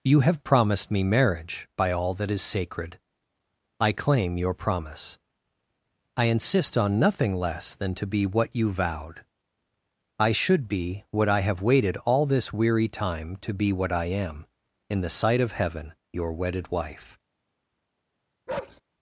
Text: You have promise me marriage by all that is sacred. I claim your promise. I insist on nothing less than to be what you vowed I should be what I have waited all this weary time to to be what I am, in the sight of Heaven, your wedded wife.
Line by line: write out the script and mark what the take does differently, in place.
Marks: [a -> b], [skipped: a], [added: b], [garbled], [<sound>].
You have [promise -> promised] me marriage by all that is sacred. I claim your promise. I insist on nothing less than to be what you vowed I should be what I have waited all this weary time to [skipped: to] be what I am, in the sight of Heaven, your wedded wife. [bark]